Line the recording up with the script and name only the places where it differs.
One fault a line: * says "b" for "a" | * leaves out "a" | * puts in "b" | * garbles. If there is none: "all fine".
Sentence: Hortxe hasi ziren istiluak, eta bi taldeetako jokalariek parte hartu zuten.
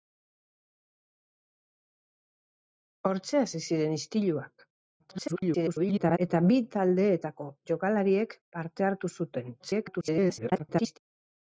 * garbles
* garbles